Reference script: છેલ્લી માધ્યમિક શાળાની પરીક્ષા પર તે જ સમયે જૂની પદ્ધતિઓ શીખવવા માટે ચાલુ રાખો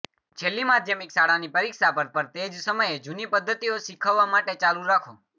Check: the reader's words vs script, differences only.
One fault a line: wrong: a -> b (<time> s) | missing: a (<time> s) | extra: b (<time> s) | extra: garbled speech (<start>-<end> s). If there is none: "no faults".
extra: પર (2.1 s)